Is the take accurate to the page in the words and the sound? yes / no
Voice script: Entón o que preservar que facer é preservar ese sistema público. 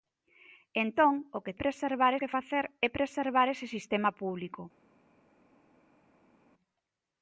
yes